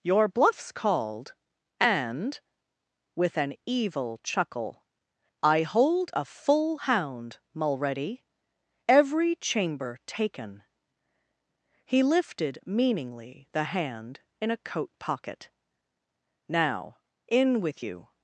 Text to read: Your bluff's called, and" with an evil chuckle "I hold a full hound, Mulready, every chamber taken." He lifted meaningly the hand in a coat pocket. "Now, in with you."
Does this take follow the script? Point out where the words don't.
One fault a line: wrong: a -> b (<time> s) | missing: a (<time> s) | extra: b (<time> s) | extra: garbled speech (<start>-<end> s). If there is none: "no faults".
no faults